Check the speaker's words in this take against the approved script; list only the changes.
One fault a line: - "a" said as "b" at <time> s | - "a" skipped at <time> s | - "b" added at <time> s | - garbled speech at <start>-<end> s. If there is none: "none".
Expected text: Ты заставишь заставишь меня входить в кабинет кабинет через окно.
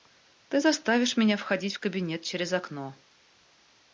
- "заставишь" skipped at 1.2 s
- "кабинет" skipped at 2.2 s